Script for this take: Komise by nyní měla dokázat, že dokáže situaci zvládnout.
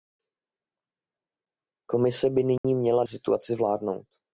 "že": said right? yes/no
no